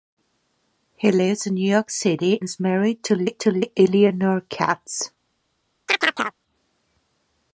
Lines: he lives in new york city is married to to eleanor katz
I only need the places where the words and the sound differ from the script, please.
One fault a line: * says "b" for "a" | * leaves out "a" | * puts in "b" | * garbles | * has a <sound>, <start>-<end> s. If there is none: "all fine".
* has a chirp, 5.9-6.4 s